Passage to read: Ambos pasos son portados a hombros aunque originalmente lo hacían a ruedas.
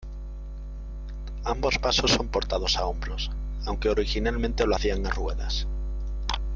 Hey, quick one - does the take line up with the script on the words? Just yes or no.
yes